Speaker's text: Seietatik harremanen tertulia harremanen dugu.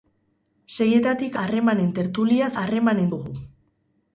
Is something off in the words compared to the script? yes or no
no